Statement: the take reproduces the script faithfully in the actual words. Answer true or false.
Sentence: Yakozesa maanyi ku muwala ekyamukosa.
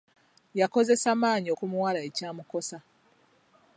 true